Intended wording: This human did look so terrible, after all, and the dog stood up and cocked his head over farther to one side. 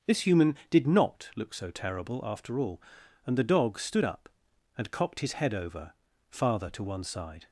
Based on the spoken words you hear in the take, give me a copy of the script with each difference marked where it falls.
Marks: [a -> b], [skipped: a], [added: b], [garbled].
This human did [added: not] look so terrible, after all, and the dog stood up and cocked his head over farther to one side.